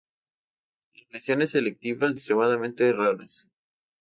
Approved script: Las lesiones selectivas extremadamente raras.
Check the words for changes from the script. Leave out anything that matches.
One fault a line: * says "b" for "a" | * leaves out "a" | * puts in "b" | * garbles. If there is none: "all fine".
all fine